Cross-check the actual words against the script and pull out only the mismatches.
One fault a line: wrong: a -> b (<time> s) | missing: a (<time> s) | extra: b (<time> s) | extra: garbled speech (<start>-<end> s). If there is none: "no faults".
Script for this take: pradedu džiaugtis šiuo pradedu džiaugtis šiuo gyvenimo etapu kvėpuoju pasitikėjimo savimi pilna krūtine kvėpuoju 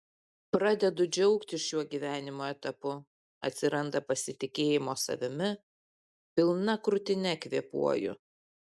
missing: pradedu džiaugtis šiuo (1.8 s)
wrong: kvėpuoju -> atsiranda (3.5 s)